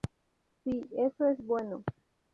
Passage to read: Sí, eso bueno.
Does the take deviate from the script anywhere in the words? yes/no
yes